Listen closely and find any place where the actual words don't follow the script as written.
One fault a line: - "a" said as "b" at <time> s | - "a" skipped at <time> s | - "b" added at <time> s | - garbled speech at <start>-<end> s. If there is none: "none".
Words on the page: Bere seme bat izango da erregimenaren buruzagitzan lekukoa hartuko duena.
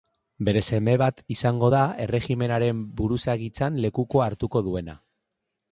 none